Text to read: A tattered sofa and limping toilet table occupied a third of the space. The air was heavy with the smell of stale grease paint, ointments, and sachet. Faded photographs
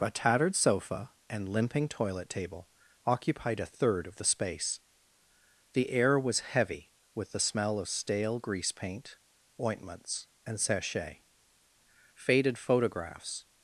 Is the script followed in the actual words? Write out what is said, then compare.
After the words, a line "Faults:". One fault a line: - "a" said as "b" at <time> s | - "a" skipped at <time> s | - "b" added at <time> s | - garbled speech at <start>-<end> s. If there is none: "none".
A tattered sofa and limping toilet table occupied a third of the space. The air was heavy with the smell of stale grease paint, ointments, and sachet. Faded photographs
Faults:
none